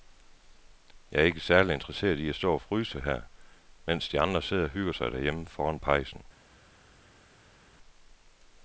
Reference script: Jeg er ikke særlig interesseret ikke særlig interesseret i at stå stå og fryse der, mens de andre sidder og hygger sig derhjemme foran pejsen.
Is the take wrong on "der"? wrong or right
wrong